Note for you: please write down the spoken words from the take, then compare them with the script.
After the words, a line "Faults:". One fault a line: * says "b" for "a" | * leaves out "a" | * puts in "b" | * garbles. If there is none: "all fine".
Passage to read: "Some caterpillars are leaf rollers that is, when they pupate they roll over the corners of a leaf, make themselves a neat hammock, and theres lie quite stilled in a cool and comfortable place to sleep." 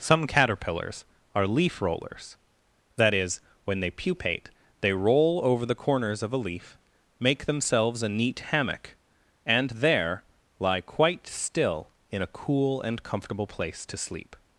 "Some caterpillars are leaf rollers that is, when they pupate they roll over the corners of a leaf, make themselves a neat hammock, and there lie quite still in a cool and comfortable place to sleep."
Faults:
* says "there" for "theres"
* says "still" for "stilled"